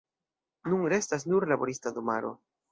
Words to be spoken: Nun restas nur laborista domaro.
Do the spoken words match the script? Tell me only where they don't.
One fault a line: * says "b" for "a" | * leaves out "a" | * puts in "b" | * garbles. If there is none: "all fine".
all fine